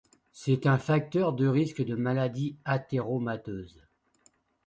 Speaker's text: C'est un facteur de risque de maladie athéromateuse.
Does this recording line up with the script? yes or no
yes